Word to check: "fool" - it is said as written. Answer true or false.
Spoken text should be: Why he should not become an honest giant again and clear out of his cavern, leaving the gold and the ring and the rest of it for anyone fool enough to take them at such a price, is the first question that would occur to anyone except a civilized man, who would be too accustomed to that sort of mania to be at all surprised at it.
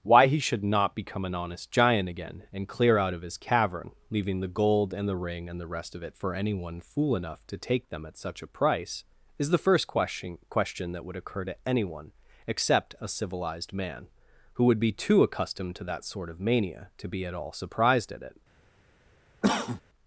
true